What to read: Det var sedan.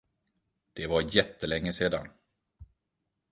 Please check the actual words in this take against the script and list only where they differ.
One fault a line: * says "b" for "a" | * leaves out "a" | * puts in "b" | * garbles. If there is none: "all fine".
* puts in "jättelänge"